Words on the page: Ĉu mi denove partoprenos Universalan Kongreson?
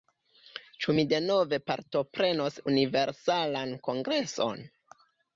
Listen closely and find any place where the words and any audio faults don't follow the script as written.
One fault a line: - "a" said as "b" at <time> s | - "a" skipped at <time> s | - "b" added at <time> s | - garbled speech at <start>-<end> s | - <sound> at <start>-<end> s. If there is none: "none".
none